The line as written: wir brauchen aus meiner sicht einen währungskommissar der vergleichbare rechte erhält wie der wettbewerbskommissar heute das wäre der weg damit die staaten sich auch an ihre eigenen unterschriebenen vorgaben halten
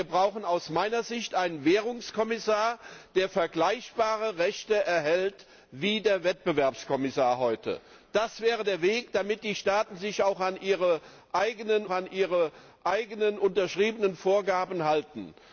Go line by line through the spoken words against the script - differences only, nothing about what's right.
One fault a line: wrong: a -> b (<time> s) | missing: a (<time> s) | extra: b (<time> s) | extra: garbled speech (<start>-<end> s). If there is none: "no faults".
extra: an ihre eigenen (11.9 s)